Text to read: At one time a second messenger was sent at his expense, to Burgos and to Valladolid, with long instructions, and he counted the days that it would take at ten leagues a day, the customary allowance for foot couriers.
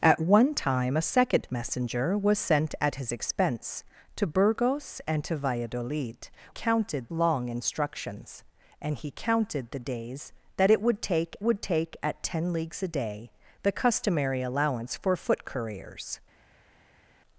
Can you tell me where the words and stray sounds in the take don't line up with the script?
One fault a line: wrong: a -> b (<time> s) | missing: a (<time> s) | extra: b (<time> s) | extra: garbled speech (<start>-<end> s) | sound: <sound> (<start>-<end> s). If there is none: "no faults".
wrong: with -> counted (6.5 s)
extra: would take (11.4 s)